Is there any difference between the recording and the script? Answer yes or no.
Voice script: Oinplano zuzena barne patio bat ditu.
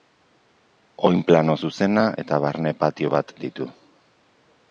yes